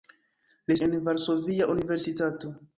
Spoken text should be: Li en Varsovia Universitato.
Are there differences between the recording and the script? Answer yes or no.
no